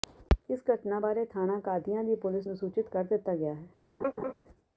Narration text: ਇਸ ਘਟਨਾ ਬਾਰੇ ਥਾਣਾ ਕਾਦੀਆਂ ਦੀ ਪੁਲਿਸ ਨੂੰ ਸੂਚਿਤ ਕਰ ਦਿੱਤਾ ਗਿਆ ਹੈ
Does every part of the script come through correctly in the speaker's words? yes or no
yes